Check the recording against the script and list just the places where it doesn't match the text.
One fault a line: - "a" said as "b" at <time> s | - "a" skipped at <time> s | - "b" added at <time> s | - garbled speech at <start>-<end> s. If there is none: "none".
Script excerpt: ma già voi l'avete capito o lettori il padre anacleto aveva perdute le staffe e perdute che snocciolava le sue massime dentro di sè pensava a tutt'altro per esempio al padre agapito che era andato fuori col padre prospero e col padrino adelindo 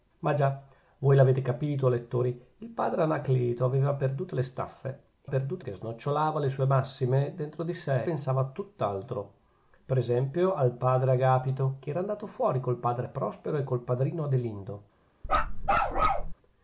none